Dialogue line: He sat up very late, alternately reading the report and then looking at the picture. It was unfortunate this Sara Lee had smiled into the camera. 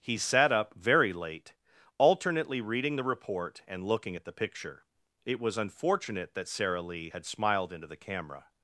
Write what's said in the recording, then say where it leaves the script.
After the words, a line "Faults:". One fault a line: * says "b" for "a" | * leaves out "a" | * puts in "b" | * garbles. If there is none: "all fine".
He sat up very late, alternately reading the report and looking at the picture. It was unfortunate that Sara Lee had smiled into the camera.
Faults:
* leaves out "then"
* says "that" for "this"